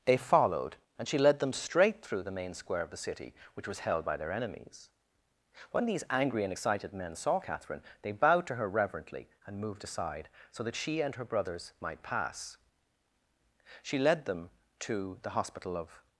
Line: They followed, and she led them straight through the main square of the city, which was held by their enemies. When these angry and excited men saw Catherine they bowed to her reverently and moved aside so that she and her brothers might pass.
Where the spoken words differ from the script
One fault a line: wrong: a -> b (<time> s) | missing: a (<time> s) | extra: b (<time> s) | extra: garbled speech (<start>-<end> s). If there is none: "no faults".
extra: She led them to the Hospital of (13.8 s)